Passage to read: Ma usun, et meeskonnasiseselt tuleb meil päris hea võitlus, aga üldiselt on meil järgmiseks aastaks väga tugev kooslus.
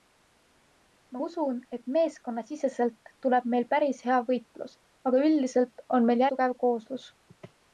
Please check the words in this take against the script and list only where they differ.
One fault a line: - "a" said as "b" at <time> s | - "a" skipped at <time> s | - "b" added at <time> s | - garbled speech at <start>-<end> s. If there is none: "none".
- "järgmiseks aastaks väga" skipped at 6.3 s